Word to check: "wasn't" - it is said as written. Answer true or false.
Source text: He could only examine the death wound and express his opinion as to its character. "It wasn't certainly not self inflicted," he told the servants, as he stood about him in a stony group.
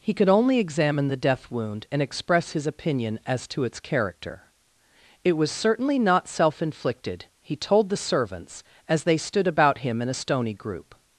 false